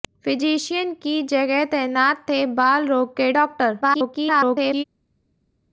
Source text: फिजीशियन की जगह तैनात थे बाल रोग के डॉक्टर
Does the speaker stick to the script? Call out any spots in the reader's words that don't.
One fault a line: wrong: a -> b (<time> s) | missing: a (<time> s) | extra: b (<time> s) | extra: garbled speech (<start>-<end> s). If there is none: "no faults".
extra: garbled speech (3.8-4.8 s)